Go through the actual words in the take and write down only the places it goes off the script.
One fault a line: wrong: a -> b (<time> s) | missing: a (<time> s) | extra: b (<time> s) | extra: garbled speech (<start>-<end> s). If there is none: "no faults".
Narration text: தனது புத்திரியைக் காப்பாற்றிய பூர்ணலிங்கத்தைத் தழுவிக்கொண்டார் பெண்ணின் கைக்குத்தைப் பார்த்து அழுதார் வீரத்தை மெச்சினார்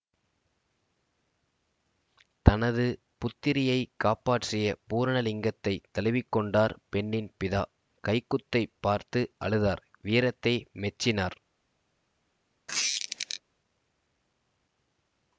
extra: பிதா (7.4 s)